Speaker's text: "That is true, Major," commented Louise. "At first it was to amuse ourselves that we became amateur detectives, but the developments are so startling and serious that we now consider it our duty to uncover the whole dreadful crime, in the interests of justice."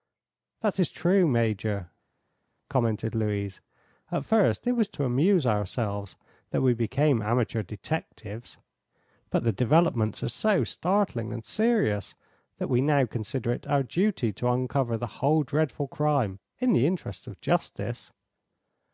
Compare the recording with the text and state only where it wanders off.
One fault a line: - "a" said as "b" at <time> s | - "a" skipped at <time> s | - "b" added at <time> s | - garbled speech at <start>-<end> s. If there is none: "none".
none